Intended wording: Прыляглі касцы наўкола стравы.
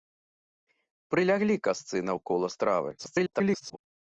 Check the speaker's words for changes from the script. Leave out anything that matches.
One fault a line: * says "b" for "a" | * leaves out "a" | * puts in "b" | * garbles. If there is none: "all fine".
* garbles